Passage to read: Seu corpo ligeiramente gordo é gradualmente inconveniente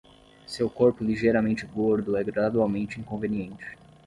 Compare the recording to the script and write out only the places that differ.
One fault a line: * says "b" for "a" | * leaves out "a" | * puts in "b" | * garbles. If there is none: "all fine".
all fine